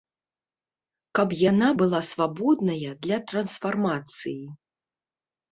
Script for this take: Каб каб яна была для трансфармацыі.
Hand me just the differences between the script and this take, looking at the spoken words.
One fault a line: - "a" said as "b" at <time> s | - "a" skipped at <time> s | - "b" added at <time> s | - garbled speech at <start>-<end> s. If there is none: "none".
- "каб" skipped at 1.4 s
- "свабодная" added at 2.1 s